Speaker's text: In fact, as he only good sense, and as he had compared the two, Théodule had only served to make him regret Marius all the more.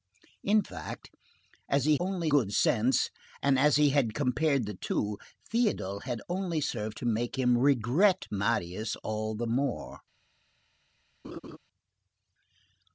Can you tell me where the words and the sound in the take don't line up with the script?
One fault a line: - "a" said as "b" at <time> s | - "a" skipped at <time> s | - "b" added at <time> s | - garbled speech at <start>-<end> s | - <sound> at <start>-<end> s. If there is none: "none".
- laugh at 11.2-11.6 s